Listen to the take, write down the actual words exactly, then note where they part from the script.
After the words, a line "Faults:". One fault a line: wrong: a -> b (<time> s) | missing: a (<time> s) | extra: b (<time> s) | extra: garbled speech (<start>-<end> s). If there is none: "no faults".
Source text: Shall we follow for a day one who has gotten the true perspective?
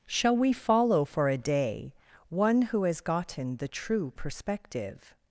Shall we follow for a day one who has gotten the true perspective?
Faults:
no faults